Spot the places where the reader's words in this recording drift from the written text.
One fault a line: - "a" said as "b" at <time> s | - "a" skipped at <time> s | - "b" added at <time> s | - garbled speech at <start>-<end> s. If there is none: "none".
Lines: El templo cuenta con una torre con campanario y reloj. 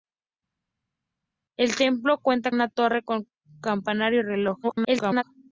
- "con" skipped at 2.5 s
- garbled speech at 4.6-5.2 s